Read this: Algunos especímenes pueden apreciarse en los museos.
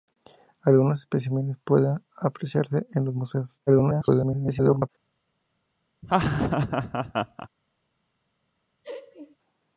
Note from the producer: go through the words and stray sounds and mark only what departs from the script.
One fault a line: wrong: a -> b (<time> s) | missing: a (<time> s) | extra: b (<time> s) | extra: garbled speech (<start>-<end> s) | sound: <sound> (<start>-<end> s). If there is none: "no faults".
extra: garbled speech (3.7-4.9 s)
sound: laugh (6.0-7.5 s)
sound: laugh (8.8-9.4 s)